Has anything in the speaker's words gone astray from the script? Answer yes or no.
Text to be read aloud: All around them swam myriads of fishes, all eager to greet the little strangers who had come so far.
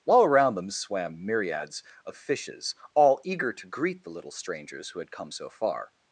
no